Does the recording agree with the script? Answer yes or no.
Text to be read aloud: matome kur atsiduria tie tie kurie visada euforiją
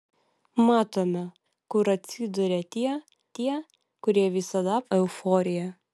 yes